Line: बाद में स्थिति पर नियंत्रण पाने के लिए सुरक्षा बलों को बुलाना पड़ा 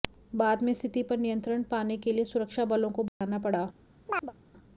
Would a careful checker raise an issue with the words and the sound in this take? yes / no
yes